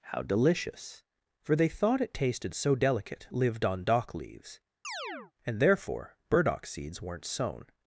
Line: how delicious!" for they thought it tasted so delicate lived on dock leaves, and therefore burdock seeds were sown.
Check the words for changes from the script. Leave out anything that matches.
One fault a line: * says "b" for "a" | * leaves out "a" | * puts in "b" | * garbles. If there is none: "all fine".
* says "weren't" for "were"